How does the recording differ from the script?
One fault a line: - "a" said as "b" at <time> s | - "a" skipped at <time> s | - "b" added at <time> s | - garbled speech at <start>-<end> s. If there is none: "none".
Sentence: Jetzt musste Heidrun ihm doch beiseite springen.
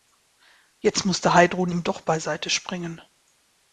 none